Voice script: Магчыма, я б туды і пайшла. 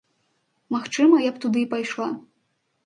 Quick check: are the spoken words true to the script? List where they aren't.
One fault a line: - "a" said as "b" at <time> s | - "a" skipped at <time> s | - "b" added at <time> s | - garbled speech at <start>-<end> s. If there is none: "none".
none